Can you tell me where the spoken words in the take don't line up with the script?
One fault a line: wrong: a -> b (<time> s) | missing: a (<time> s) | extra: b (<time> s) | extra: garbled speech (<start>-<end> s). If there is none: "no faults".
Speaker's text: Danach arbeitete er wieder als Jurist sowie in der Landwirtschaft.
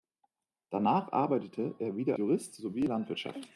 missing: als (2.1 s)
missing: der (2.9 s)